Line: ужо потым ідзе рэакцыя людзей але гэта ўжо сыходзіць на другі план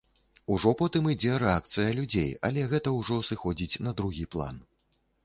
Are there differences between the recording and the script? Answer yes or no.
no